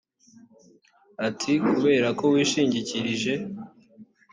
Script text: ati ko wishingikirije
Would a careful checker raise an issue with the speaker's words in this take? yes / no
yes